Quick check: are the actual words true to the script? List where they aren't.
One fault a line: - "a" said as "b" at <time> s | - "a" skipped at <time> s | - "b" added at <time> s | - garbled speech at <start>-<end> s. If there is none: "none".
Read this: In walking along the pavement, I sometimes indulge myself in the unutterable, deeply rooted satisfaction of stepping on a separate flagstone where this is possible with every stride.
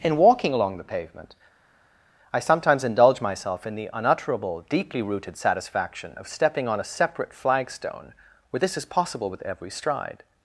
none